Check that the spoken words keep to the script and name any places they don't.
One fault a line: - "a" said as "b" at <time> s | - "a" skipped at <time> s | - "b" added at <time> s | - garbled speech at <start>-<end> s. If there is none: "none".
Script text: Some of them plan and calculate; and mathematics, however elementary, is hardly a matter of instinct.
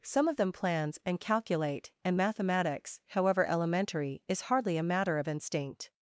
- "plan" said as "plans" at 0.5 s